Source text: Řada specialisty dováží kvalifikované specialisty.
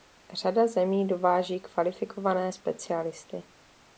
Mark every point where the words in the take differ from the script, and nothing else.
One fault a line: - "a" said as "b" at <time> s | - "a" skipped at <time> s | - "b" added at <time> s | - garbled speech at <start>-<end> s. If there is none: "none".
- "specialisty" said as "zemí" at 0.7 s